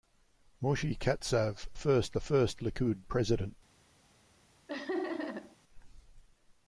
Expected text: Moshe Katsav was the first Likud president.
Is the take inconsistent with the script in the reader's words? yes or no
yes